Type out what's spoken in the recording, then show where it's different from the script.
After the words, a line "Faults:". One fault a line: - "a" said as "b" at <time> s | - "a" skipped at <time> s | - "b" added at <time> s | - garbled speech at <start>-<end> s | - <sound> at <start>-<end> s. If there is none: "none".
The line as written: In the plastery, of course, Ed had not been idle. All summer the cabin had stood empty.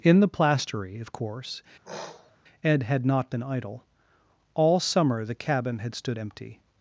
In the plastery, of course, Ed had not been idle. All summer the cabin had stood empty.
Faults:
- sniff at 1.8-2.4 s